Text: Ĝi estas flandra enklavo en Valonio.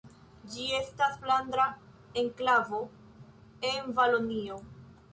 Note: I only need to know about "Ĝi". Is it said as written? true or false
true